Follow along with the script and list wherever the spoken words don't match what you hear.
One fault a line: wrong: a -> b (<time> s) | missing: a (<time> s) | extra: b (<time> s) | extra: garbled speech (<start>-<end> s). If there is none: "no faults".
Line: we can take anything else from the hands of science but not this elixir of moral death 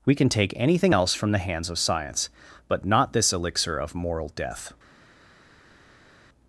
no faults